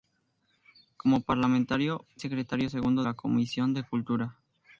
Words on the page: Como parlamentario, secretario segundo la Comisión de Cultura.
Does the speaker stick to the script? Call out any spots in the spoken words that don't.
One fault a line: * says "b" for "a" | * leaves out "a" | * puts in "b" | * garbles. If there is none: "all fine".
all fine